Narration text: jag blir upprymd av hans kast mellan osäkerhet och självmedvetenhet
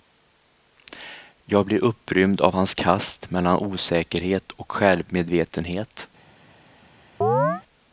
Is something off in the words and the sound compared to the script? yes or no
yes